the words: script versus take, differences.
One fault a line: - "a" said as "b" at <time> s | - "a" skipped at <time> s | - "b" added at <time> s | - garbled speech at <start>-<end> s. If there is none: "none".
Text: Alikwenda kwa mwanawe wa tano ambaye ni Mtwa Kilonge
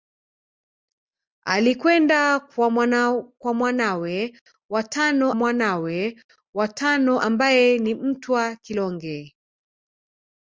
- "mwanawe wa tano" added at 5.3 s